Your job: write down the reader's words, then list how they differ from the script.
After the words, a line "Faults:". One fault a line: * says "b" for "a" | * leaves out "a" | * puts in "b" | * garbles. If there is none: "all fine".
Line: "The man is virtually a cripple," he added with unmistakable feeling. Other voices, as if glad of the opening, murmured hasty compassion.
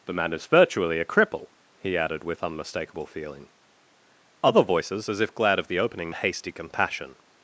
"The man is virtually a cripple," he added with unmistakable feeling. Other voices, as if glad of the opening, hasty compassion.
Faults:
* leaves out "murmured"